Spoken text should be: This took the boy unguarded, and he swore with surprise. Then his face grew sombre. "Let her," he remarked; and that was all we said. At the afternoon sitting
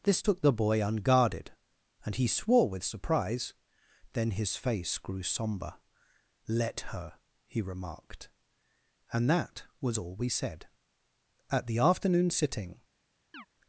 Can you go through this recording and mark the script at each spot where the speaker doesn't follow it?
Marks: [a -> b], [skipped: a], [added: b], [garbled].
This took the boy unguarded, and he swore with surprise. Then his face grew sombre. "Let her," he remarked; and that was all we said. At the afternoon sitting